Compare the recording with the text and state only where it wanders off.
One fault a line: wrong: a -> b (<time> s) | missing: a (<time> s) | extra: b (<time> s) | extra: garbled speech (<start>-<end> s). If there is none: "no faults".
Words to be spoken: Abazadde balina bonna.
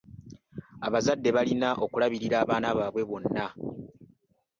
extra: okulabirira abaana baabwe (1.8 s)